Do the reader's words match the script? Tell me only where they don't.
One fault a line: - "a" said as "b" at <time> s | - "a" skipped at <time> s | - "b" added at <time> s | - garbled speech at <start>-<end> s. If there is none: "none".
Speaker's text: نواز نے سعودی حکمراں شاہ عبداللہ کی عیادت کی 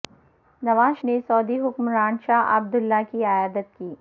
none